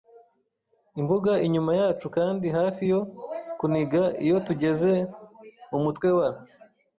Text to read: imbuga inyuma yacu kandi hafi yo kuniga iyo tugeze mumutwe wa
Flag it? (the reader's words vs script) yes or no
no